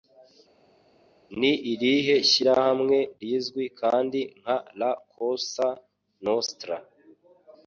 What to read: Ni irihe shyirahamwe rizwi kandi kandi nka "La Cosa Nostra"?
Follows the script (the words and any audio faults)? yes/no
no